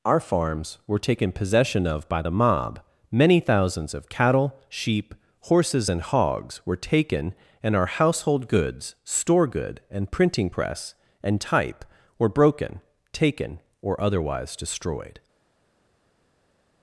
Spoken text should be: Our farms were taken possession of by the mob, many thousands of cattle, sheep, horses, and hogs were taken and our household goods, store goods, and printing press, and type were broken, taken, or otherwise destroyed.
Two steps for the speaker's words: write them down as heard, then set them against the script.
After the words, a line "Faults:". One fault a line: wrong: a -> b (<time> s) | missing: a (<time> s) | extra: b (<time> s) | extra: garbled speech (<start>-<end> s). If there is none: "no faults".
Our farms were taken possession of by the mob, many thousands of cattle, sheep, horses, and hogs were taken and our household goods, store good, and printing press, and type were broken, taken, or otherwise destroyed.
Faults:
wrong: goods -> good (9.5 s)